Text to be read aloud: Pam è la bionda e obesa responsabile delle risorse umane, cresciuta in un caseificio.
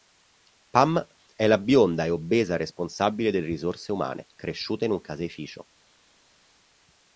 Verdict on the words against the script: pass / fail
pass